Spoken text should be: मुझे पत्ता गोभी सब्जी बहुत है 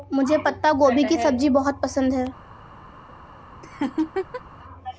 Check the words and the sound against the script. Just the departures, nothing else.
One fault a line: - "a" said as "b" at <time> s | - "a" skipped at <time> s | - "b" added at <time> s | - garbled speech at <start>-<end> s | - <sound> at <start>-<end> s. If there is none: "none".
- "की" added at 1.0 s
- "पसंद" added at 1.8 s
- laugh at 3.6-4.4 s